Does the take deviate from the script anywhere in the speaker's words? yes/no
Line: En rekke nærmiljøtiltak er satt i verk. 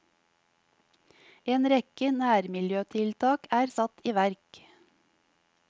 no